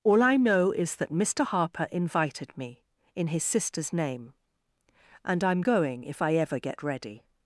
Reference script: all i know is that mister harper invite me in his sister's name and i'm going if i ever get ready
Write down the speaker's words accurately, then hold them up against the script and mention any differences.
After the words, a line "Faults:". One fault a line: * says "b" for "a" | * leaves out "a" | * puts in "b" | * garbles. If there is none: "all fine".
all i know is that mister harper invited me in his sister's name and i'm going if i ever get ready
Faults:
* says "invited" for "invite"